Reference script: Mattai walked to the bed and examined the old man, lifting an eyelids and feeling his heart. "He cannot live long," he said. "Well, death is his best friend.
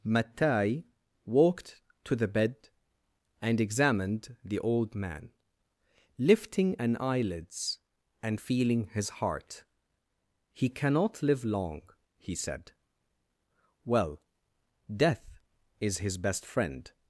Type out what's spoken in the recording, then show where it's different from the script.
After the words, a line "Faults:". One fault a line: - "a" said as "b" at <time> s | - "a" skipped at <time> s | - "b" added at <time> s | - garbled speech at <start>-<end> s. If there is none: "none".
Mattai walked to the bed and examined the old man, lifting an eyelids and feeling his heart. "He cannot live long," he said. "Well, death is his best friend.
Faults:
none